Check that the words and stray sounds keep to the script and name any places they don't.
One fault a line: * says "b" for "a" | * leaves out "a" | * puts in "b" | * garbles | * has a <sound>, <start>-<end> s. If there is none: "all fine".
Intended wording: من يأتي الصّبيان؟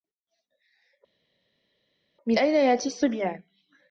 * puts in "أين"